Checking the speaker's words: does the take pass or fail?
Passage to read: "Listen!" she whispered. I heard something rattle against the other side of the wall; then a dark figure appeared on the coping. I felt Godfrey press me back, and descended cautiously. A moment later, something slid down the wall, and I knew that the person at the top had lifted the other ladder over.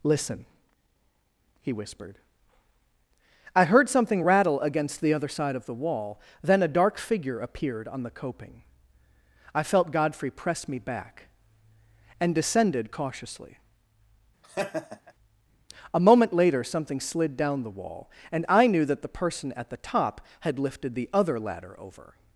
fail